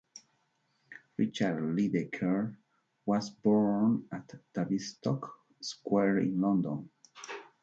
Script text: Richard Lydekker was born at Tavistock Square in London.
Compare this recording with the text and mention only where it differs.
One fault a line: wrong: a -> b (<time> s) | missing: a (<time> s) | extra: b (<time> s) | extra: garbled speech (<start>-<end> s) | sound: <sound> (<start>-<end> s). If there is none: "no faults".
no faults